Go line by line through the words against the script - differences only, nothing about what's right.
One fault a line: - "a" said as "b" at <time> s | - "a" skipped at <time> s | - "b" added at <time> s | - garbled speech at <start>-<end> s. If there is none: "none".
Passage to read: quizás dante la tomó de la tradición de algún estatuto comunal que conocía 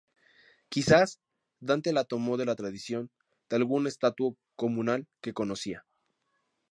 none